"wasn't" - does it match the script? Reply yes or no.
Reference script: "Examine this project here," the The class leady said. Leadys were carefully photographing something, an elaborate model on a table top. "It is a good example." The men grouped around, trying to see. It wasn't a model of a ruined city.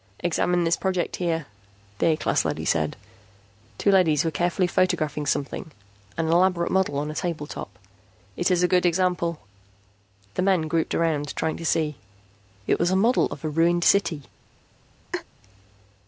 no